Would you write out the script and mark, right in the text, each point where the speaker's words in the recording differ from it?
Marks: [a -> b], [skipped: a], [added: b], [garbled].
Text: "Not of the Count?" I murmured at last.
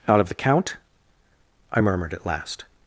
["Not -> Out] of the Count?" I murmured at last.